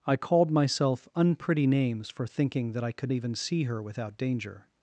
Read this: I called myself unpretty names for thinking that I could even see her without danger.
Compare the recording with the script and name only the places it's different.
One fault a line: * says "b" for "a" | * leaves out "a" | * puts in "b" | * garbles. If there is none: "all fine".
all fine